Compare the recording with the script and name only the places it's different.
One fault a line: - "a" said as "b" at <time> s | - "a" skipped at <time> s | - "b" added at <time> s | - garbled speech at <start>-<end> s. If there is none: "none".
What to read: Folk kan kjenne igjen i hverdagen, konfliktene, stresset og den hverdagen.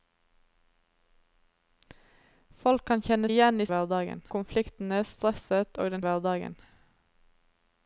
none